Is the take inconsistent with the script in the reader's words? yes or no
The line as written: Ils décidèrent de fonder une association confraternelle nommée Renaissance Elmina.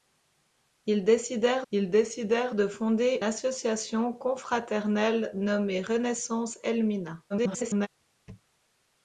yes